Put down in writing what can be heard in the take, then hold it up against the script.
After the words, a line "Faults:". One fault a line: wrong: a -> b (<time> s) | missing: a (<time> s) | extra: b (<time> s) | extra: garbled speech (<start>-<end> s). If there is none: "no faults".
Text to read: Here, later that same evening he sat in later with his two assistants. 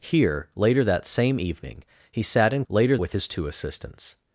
Here, later that same evening he sat in later with his two assistants.
Faults:
no faults